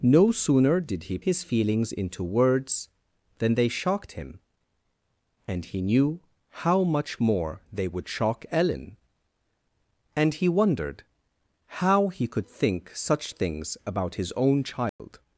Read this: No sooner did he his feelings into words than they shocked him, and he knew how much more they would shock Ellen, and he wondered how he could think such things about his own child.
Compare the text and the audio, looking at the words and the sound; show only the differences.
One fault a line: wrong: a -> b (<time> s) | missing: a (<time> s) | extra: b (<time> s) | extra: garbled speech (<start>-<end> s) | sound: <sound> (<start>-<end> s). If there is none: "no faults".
sound: dropout (14.9-15.0 s)